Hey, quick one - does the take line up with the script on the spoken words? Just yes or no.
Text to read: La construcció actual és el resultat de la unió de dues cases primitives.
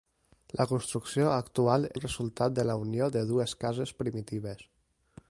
no